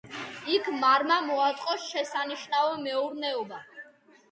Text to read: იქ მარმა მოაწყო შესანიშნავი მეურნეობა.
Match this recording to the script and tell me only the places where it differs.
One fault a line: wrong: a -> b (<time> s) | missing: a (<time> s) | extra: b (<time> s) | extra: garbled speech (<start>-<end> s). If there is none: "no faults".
no faults